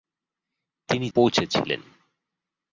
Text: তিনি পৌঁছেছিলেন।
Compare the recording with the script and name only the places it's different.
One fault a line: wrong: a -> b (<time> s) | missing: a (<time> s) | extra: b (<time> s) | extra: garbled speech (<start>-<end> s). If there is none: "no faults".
no faults